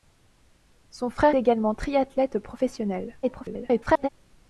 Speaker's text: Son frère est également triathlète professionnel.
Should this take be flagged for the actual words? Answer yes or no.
yes